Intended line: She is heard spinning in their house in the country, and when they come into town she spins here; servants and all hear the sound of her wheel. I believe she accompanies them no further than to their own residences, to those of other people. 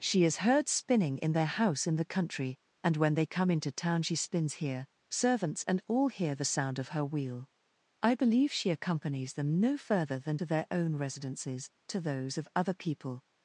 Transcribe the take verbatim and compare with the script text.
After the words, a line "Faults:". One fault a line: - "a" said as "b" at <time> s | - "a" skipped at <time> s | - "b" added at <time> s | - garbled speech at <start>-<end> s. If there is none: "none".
She is heard spinning in their house in the country, and when they come into town she spins here; servants and all hear the sound of her wheel. I believe she accompanies them no further than to their own residences, to those of other people.
Faults:
none